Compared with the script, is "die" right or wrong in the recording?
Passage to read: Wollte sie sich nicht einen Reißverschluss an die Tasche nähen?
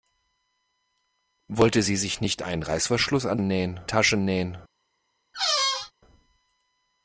wrong